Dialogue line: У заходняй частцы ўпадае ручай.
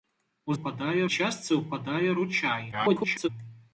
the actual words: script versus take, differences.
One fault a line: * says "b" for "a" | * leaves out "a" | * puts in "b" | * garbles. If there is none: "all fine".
* says "ўпадае" for "заходняй"
* garbles